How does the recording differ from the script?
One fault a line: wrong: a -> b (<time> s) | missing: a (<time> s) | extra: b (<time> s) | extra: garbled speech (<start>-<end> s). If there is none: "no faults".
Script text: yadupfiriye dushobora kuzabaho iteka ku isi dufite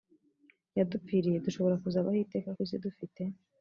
no faults